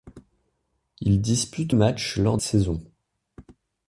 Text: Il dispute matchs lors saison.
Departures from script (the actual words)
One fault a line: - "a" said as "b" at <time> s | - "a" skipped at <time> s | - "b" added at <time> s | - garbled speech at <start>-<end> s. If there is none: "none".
none